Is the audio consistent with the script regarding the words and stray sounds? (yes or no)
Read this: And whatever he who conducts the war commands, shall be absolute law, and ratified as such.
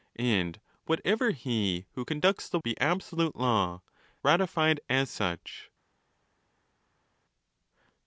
no